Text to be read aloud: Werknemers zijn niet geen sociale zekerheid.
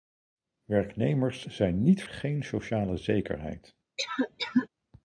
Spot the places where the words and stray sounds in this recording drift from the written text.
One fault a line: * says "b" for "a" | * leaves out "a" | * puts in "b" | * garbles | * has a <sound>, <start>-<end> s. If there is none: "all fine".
* has a cough, 4.0-4.7 s